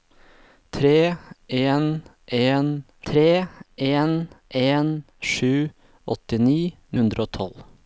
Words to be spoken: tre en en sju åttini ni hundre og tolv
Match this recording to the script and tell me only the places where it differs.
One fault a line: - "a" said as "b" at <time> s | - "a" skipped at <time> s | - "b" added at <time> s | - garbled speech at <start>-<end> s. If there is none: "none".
- "tre en en" added at 3.1 s
- "ni" skipped at 6.6 s